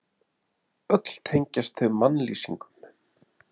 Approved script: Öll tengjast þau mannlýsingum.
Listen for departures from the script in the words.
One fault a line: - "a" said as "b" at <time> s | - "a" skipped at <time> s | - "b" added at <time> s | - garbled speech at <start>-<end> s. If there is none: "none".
none